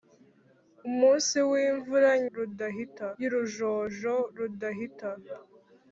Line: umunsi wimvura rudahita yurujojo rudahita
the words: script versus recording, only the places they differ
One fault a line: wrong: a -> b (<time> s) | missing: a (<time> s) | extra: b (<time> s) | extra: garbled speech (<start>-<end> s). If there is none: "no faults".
no faults